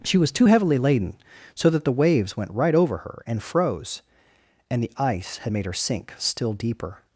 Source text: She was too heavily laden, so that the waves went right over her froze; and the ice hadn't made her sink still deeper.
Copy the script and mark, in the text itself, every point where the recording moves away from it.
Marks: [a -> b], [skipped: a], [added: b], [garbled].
She was too heavily laden, so that the waves went right over her [added: and] froze; and the ice [hadn't -> had] made her sink still deeper.